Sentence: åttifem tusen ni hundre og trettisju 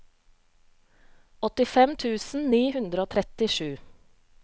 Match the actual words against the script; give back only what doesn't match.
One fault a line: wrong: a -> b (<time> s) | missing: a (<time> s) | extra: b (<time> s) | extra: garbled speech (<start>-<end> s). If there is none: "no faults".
no faults